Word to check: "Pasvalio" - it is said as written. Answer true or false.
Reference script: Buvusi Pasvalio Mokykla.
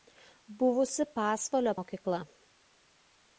true